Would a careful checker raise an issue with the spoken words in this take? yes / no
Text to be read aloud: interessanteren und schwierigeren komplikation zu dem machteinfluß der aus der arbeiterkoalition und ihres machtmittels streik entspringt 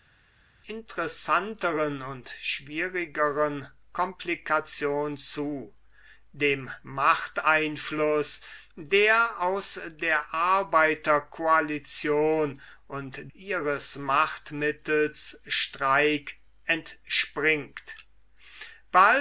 no